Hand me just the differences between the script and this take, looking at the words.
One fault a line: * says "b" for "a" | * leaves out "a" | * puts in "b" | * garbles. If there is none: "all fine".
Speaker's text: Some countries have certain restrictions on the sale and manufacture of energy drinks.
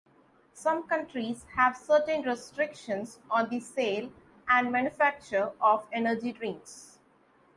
all fine